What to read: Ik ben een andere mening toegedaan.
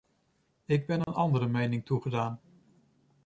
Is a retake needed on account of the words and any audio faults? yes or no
yes